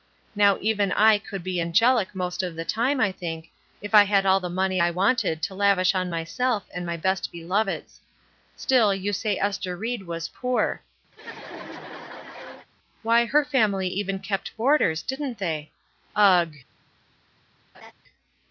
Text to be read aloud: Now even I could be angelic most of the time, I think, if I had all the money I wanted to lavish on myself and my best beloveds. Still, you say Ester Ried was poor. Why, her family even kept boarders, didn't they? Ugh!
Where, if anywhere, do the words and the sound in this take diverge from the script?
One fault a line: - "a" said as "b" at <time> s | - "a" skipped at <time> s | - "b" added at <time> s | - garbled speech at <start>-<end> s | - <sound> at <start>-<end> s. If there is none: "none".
- laugh at 11.1-12.7 s
- laugh at 17.7-17.9 s